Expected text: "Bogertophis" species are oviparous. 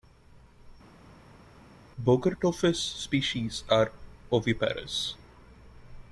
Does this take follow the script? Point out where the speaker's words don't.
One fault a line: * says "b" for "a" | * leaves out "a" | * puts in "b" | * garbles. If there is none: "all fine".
all fine